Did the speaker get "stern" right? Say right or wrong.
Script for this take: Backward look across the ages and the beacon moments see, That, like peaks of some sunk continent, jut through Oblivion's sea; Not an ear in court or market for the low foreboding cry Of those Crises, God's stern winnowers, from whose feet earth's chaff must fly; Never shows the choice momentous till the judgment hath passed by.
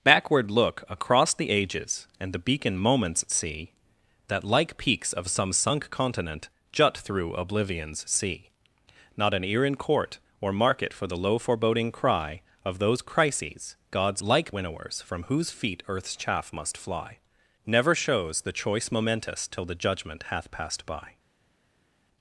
wrong